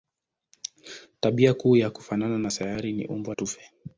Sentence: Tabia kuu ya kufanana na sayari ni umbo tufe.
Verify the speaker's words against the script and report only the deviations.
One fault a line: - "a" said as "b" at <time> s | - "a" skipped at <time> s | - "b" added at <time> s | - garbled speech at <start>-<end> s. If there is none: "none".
none